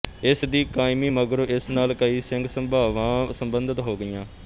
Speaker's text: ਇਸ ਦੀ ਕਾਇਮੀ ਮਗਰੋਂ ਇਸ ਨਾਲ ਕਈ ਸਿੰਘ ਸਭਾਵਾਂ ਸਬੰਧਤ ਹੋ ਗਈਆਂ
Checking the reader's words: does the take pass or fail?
pass